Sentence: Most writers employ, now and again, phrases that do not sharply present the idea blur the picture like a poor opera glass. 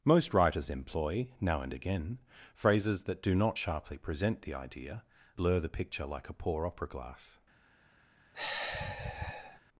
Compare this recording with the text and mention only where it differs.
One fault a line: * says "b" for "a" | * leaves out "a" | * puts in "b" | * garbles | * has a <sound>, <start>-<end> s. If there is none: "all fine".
* has a sigh, 8.3-9.6 s